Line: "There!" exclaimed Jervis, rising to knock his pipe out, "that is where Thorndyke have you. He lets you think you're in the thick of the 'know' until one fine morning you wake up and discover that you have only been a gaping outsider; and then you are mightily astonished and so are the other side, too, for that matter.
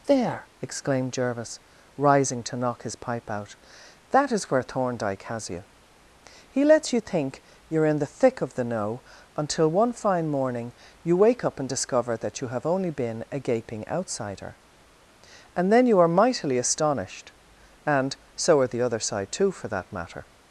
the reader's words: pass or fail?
fail